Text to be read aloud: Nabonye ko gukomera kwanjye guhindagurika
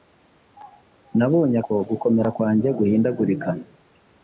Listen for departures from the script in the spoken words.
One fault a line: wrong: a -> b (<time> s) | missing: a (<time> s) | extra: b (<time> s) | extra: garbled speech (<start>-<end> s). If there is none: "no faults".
no faults